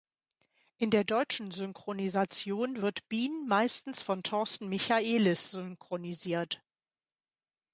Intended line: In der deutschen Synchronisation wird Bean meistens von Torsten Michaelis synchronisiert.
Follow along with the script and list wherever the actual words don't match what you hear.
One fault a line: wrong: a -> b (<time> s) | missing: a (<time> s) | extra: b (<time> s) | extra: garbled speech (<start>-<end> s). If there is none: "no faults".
no faults